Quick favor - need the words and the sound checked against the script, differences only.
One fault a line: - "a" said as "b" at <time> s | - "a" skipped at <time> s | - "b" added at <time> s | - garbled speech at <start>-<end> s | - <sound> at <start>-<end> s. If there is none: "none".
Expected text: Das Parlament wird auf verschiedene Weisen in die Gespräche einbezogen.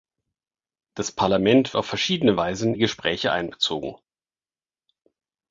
- "wird" skipped at 1.8 s
- "in" skipped at 2.7 s